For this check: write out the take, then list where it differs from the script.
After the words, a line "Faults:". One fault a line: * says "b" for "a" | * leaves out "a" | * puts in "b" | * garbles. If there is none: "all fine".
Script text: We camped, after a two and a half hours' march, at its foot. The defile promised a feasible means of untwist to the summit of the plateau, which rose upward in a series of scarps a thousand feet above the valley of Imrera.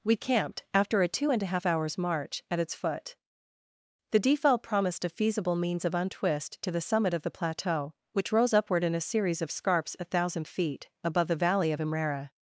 We camped, after a two and a half hours' march, at its foot. The defile promised a feasible means of untwist to the summit of the plateau, which rose upward in a series of scarps a thousand feet above the valley of Imrera.
Faults:
all fine